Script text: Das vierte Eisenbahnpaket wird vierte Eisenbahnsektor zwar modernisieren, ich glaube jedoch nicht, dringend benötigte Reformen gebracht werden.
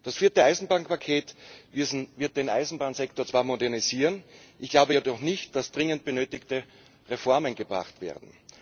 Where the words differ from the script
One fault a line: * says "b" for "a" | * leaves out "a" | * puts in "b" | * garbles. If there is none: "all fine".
* says "den" for "vierte"
* puts in "dass"